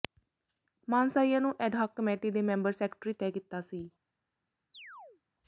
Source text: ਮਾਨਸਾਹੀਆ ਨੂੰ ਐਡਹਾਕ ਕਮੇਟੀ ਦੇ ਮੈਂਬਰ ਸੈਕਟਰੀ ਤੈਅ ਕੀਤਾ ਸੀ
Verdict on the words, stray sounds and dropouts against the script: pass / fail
fail